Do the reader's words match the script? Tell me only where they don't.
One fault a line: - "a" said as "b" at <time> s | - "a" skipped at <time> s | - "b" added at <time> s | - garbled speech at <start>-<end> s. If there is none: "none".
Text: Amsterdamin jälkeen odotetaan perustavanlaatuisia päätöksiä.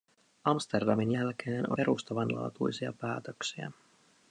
- "odotetaan" skipped at 1.7 s